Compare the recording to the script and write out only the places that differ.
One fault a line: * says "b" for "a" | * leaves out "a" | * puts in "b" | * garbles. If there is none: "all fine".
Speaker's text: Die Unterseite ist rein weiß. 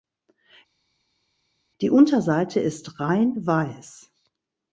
all fine